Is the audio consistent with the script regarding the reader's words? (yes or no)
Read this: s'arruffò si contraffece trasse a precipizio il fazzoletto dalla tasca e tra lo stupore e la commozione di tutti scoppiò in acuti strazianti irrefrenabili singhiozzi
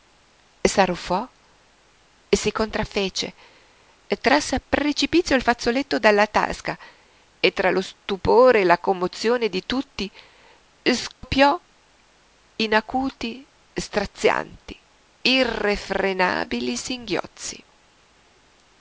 yes